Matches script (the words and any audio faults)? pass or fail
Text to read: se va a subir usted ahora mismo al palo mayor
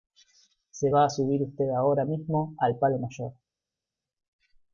pass